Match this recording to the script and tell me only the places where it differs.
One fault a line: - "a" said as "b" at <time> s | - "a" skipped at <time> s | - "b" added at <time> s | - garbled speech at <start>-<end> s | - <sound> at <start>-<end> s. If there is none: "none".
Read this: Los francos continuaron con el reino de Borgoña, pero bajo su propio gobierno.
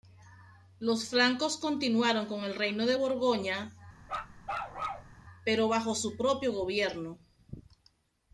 - bark at 4.0-5.1 s